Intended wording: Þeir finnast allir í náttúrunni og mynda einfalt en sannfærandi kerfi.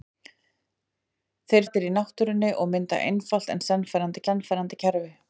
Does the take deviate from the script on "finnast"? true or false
true